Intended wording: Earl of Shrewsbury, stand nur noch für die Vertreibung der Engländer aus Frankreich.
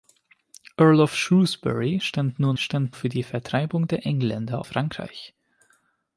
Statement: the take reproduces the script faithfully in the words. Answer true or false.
false